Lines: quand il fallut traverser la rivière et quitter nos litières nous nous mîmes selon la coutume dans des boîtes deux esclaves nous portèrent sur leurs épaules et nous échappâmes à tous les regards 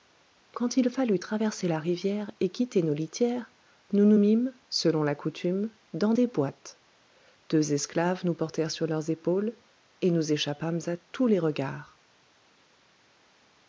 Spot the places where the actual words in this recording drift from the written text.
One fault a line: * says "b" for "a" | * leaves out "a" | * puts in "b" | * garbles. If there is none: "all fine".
all fine